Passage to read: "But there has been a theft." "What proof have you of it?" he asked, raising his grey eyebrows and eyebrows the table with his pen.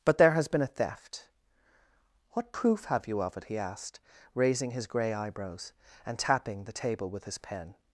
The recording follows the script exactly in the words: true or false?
false